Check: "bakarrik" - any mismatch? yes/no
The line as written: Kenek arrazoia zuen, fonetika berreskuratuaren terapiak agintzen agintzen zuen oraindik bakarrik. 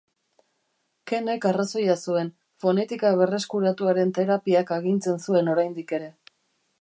yes